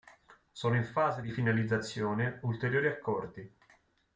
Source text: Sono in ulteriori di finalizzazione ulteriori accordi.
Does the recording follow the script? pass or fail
fail